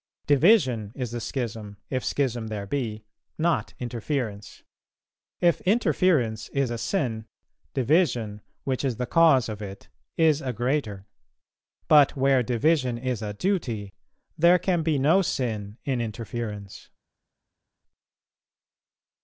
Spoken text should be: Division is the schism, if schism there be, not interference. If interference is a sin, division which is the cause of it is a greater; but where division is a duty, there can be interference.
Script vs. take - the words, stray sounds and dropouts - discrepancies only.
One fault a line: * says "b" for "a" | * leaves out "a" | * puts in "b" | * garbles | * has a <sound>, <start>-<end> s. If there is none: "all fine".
* puts in "no sin in"